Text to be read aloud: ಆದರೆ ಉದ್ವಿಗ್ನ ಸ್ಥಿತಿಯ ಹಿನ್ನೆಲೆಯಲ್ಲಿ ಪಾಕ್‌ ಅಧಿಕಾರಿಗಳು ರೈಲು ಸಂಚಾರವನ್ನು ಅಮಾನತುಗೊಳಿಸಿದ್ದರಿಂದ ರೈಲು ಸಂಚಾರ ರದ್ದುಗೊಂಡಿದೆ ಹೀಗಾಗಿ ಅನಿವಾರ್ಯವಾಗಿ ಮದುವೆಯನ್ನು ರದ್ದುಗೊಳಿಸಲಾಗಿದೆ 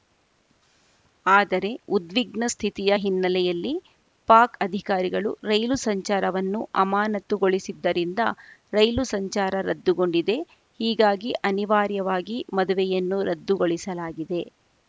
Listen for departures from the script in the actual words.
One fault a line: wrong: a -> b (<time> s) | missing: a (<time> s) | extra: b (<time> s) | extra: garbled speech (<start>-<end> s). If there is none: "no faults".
no faults